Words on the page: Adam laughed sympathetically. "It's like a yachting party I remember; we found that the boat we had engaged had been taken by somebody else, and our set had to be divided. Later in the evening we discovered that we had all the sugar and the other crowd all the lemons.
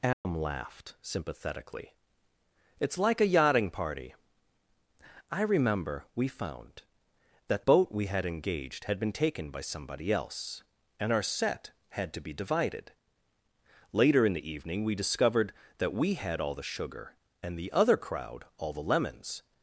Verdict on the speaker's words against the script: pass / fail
fail